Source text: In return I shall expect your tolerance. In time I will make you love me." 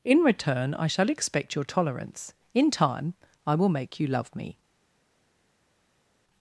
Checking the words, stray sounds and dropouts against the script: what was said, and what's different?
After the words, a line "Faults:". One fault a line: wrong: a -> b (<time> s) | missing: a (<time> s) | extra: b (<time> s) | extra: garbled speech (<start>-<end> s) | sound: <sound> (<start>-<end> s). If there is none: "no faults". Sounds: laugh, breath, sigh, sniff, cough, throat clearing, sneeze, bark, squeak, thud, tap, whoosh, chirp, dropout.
In return I shall expect your tolerance. In time I will make you love me."
Faults:
no faults